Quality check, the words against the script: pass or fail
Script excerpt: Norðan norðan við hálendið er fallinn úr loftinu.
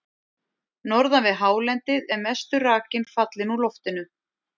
fail